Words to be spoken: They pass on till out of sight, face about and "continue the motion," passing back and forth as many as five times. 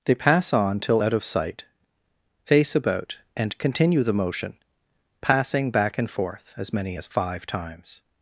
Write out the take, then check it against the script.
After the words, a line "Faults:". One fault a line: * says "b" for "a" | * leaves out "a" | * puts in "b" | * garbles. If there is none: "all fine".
They pass on till out of sight, face about and "continue the motion," passing back and forth as many as five times.
Faults:
all fine